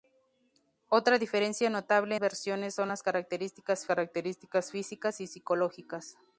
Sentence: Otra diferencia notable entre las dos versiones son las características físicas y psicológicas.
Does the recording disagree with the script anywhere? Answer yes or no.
yes